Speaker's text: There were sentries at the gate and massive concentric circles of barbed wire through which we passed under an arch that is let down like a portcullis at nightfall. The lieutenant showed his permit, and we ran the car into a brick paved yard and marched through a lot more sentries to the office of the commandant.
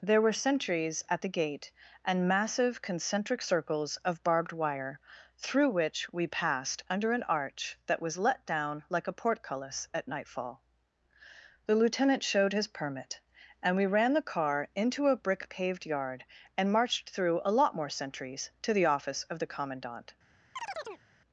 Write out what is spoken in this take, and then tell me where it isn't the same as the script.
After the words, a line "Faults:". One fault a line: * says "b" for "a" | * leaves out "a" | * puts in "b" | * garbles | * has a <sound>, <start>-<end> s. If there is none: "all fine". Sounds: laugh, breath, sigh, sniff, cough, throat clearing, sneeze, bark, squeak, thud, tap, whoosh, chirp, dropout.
There were sentries at the gate and massive concentric circles of barbed wire through which we passed under an arch that was let down like a portcullis at nightfall. The lieutenant showed his permit, and we ran the car into a brick paved yard and marched through a lot more sentries to the office of the commandant.
Faults:
* says "was" for "is"
* has a chirp, 20.6-21.0 s